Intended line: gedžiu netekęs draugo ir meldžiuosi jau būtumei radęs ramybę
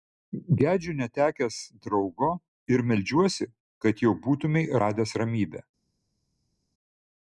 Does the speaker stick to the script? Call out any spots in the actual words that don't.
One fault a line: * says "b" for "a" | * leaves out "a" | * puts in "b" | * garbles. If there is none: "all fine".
* puts in "kad"